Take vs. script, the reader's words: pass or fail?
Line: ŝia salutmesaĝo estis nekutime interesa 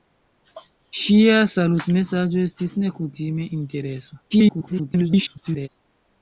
fail